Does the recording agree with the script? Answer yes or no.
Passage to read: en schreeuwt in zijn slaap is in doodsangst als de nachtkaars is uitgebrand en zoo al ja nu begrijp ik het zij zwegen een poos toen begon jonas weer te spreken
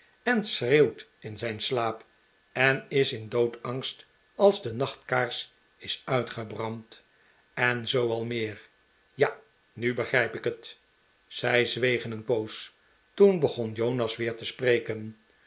no